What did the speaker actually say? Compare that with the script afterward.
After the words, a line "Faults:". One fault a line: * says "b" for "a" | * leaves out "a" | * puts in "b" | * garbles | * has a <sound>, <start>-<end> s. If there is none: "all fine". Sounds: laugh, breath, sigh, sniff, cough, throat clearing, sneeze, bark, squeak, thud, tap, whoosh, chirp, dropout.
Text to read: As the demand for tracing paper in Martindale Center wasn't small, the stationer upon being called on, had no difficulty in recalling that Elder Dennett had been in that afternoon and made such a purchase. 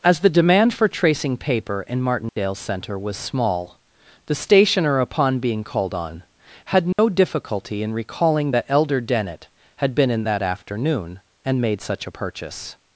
As the demand for tracing paper in Martindale Center was small, the stationer upon being called on, had no difficulty in recalling that Elder Dennett had been in that afternoon and made such a purchase.
Faults:
* has a dropout, 2.3-2.4 s
* says "was" for "wasn't"
* has a dropout, 6.9-7.0 s